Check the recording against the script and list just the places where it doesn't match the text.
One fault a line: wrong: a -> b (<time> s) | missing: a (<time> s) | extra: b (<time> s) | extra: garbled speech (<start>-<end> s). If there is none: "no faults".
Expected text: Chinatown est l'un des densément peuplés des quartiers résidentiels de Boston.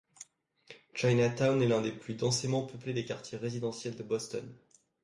extra: plus (1.9 s)